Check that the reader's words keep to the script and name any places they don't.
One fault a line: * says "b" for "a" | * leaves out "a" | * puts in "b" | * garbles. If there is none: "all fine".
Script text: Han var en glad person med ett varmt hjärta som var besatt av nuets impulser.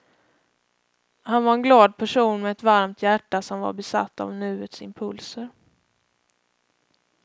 all fine